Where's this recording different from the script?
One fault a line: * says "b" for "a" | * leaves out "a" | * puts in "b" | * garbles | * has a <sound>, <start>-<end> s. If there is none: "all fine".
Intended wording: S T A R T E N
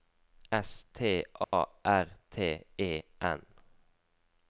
* has a dropout, 1.4-1.5 s